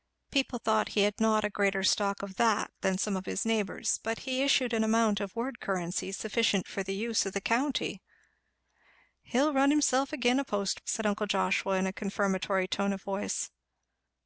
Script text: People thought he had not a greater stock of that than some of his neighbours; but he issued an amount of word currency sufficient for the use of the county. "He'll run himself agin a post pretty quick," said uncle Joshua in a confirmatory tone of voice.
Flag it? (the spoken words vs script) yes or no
yes